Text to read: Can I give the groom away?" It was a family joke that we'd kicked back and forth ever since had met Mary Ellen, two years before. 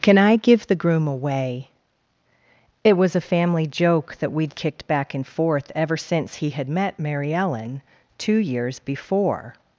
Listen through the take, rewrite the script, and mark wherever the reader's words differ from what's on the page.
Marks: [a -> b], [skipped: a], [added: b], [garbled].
Can I give the groom away?" It was a family joke that we'd kicked back and forth ever since [added: he] had met Mary Ellen, two years before.